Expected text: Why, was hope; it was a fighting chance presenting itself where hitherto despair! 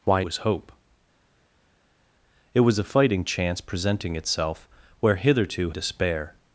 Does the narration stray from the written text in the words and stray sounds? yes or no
no